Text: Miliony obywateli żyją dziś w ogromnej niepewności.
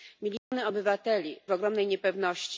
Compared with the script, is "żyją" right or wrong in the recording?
wrong